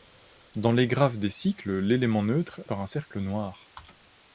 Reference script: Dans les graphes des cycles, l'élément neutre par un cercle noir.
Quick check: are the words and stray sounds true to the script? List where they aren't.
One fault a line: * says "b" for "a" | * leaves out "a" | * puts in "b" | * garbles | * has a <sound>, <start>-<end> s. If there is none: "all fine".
all fine